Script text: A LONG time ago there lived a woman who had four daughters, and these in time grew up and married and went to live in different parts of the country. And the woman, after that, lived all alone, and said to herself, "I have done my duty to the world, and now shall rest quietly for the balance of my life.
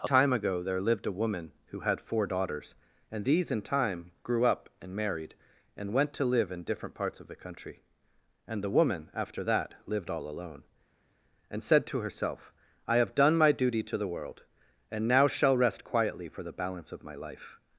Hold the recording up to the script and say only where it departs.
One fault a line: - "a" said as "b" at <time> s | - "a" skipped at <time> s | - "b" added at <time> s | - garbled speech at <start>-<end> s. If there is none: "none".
- "LONG" skipped at 0.1 s